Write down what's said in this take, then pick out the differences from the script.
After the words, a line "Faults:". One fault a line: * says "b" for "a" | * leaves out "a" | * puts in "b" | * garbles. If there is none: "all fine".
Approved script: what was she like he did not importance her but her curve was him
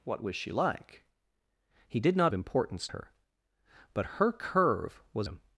what was she like he did not importance her but her curve was him
Faults:
all fine